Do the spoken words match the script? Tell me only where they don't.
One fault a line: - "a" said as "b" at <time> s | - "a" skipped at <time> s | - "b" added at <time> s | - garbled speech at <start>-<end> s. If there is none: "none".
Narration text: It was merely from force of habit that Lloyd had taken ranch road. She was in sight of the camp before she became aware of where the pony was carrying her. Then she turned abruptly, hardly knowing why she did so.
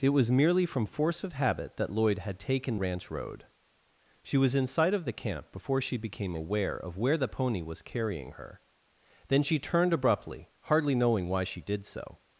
none